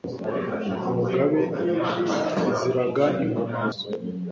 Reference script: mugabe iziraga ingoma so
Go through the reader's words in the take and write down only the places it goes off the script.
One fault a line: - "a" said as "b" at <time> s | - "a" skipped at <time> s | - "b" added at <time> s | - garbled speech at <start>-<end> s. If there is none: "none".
none